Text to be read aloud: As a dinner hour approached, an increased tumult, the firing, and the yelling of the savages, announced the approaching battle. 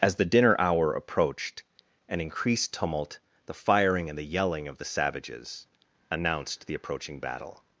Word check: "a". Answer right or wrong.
wrong